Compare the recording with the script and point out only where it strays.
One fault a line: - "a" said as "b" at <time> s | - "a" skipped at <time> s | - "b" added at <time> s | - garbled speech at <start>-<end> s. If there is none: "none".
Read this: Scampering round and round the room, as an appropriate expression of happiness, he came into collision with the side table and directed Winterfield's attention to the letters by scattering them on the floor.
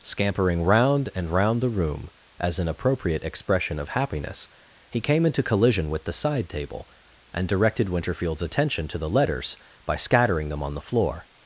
none